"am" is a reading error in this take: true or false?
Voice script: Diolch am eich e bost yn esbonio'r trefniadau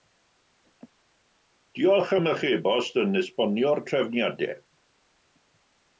false